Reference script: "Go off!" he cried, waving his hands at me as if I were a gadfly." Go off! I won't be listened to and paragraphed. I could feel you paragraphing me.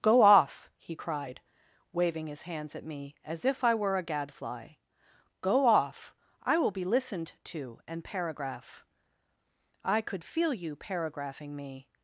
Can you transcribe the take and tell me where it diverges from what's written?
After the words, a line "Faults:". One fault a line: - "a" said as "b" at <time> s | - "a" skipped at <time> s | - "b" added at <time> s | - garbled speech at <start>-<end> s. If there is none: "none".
"Go off!" he cried, waving his hands at me as if I were a gadfly." Go off! I will be listened to and paragraph. I could feel you paragraphing me.
Faults:
- "won't" said as "will" at 6.6 s
- "paragraphed" said as "paragraph" at 8.0 s